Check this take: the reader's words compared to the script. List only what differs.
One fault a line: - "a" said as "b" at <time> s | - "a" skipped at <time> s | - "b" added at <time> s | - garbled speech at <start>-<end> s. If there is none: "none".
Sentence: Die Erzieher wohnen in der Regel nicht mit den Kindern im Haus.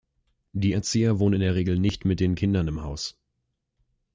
none